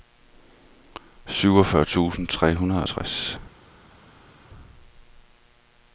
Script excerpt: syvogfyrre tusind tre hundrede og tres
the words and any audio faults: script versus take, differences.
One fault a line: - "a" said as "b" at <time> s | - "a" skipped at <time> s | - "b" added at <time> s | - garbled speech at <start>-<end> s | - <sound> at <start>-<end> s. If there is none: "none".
none